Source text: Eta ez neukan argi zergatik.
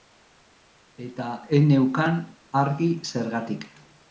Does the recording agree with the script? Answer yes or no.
yes